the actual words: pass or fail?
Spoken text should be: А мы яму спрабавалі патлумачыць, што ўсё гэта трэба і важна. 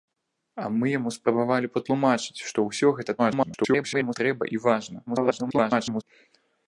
fail